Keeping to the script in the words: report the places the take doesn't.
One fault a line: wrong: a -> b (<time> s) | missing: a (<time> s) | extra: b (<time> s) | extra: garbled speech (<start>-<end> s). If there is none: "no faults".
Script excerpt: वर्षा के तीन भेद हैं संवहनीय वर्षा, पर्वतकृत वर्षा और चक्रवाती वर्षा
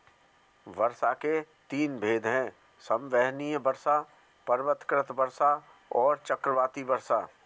no faults